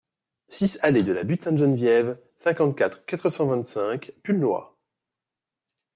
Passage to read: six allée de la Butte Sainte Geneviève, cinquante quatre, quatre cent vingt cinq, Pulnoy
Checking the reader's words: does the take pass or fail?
pass